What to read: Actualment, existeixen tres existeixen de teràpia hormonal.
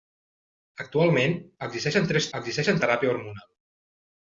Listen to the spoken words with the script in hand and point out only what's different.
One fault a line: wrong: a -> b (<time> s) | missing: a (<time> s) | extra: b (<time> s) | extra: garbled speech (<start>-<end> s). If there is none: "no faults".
no faults